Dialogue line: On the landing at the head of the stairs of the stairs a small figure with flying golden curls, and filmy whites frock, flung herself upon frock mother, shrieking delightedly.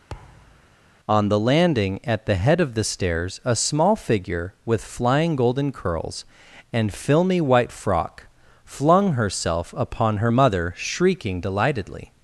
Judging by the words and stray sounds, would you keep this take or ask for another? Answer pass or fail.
fail